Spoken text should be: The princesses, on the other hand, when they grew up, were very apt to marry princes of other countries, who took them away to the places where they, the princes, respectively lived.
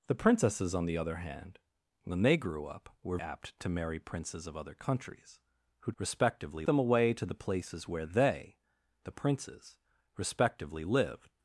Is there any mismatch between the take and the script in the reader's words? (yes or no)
yes